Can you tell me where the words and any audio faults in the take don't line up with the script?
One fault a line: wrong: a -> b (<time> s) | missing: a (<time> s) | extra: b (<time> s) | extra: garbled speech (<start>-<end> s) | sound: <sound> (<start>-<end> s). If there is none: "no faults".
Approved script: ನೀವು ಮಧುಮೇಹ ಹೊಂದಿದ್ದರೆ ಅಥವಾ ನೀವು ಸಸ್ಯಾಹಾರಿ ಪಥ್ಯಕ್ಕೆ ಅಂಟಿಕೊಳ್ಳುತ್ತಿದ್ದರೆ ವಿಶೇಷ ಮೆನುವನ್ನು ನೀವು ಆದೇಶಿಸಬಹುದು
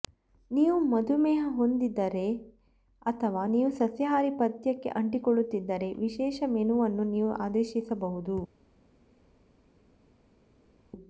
no faults